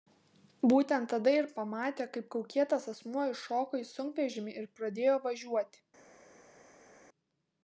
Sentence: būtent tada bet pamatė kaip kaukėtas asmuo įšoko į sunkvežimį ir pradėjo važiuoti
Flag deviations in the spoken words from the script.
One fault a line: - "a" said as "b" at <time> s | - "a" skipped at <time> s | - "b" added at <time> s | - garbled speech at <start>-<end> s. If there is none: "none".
- "bet" said as "ir" at 1.4 s